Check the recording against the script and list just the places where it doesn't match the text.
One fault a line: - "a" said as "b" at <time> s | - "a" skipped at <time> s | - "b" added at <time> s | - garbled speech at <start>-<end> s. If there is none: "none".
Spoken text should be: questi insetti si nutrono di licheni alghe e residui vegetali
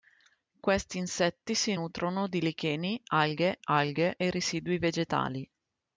- "alghe" added at 3.6 s